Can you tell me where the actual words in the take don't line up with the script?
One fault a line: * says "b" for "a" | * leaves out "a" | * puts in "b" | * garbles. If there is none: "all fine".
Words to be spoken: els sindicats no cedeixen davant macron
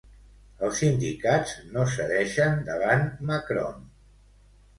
all fine